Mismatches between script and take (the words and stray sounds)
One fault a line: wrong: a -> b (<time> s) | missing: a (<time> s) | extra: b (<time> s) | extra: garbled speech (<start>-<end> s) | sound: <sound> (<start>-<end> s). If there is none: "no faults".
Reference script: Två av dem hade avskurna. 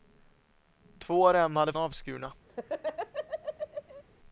sound: laugh (2.5-4.0 s)